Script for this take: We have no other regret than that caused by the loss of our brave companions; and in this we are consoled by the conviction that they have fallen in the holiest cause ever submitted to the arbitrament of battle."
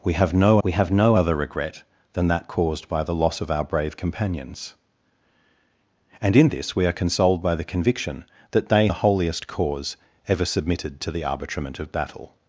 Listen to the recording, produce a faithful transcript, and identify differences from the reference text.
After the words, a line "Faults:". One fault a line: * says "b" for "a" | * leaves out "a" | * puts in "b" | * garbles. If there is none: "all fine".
We have no we have no other regret than that caused by the loss of our brave companions; and in this we are consoled by the conviction that they the holiest cause ever submitted to the arbitrament of battle."
Faults:
* puts in "we have no"
* leaves out "have fallen in"